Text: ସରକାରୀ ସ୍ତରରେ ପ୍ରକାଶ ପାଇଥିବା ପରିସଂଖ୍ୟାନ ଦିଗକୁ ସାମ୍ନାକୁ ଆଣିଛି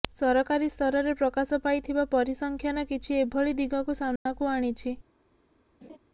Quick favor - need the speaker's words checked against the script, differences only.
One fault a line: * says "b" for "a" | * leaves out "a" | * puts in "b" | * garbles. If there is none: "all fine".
* puts in "କିଛି ଏଭଳି"